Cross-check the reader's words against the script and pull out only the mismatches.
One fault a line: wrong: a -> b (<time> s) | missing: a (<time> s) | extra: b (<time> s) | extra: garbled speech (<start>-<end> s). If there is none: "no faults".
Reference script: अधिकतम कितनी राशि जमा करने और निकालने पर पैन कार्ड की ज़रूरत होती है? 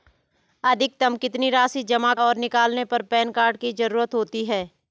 missing: करने (2.1 s)